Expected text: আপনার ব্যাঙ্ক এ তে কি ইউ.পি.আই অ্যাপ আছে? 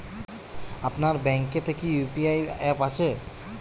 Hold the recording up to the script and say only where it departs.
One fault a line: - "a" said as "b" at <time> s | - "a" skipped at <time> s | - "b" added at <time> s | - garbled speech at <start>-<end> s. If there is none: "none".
none